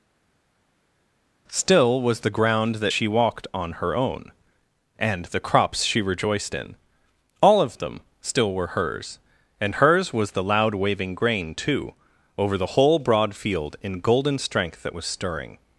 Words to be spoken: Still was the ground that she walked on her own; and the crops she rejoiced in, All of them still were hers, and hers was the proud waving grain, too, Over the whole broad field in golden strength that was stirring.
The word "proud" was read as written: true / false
false